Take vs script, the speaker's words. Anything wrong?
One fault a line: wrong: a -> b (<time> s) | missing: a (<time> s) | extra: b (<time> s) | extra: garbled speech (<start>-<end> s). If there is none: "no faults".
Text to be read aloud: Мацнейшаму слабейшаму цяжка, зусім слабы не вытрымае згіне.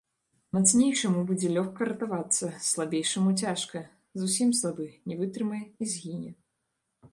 extra: будзе лёгка ратавацца (1.3 s)
extra: і (5.7 s)